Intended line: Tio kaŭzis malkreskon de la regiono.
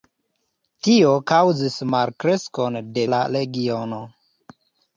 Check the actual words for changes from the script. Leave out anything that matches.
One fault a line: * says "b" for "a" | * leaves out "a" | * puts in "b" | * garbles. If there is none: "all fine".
all fine